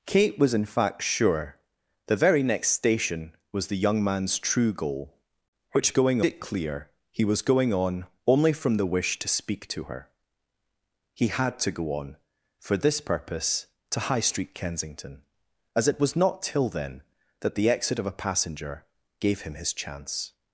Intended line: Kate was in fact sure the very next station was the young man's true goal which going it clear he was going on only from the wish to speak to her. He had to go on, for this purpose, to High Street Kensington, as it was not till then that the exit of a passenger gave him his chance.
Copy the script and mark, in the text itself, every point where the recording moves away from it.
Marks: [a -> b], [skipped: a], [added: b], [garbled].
Kate was in fact sure the very next station was the young man's true goal which going it clear he was going on only from the wish to speak to her. He had to go on, for this purpose, to High Street Kensington, as it was not till then that the exit of a passenger gave him his chance.